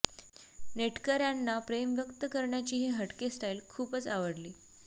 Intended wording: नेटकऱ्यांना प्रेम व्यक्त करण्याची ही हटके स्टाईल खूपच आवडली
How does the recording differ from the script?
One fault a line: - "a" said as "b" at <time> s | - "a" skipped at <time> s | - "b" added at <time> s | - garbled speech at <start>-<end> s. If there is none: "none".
none